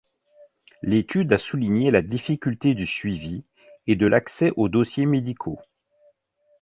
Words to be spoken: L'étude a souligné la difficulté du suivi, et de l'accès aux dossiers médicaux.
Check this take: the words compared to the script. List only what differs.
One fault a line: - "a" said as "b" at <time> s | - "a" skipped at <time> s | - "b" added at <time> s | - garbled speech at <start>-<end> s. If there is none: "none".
none